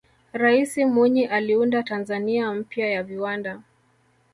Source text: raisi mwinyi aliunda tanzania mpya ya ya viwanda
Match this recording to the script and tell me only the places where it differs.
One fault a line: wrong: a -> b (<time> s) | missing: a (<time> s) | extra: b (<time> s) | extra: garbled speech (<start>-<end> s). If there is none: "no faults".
missing: ya (3.0 s)